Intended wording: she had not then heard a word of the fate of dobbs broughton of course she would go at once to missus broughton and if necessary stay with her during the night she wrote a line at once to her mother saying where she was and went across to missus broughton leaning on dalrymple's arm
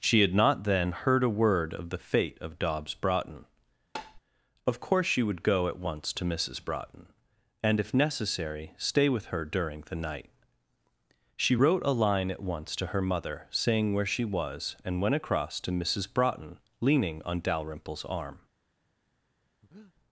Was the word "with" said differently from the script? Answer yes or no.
no